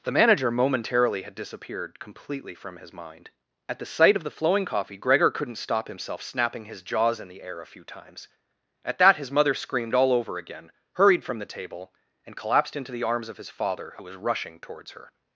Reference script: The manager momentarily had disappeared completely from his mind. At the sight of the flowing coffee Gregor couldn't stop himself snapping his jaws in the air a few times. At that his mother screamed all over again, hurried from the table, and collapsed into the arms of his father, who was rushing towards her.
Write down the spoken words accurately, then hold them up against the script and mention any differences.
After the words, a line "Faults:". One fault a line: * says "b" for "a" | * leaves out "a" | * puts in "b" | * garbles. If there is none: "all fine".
The manager momentarily had disappeared completely from his mind. At the sight of the flowing coffee Gregor couldn't stop himself snapping his jaws in the air a few times. At that his mother screamed all over again, hurried from the table, and collapsed into the arms of his father, who was rushing towards her.
Faults:
all fine